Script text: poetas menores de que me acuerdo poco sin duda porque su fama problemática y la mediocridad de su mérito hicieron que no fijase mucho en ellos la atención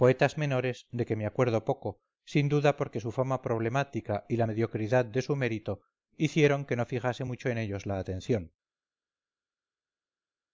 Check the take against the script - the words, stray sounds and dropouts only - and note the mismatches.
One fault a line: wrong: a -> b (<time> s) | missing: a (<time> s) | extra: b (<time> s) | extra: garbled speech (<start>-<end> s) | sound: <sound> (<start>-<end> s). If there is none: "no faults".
no faults